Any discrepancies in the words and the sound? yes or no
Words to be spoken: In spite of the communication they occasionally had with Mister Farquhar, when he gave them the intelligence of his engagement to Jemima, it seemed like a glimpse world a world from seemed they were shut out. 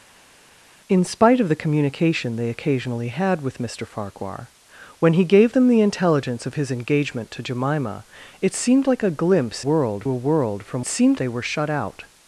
no